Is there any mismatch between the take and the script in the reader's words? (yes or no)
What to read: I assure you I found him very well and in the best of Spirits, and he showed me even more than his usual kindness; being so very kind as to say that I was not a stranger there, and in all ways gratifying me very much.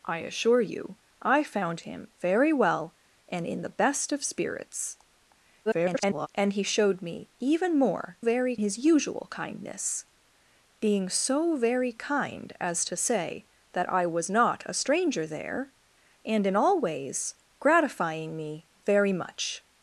yes